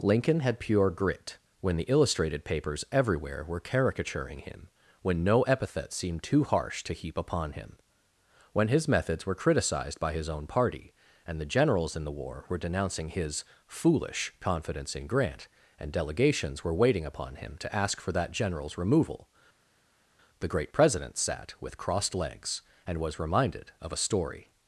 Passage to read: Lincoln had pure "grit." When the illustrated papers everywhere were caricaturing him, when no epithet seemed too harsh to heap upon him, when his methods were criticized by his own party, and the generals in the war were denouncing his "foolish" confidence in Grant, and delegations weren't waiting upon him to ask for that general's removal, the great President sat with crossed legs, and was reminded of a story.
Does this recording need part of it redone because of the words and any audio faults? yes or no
yes